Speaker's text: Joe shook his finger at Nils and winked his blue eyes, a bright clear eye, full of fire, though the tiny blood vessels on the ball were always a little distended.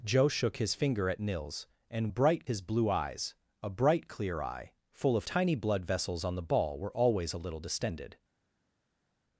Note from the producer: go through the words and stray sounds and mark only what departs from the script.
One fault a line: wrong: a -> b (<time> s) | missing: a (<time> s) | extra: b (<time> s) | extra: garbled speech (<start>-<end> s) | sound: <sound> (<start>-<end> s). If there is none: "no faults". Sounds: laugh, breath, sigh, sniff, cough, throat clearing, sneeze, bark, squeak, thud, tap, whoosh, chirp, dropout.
wrong: winked -> bright (2.1 s)
missing: fire though the (5.2 s)